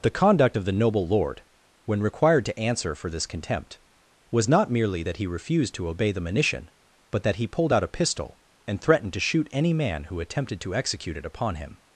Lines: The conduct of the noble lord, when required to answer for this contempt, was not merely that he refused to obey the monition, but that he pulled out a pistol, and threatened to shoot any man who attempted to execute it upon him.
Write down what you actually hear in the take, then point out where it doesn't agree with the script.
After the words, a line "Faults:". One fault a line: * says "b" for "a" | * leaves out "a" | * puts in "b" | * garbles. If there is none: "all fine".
The conduct of the noble lord, when required to answer for this contempt, was not merely that he refused to obey the monition, but that he pulled out a pistol, and threatened to shoot any man who attempted to execute it upon him.
Faults:
all fine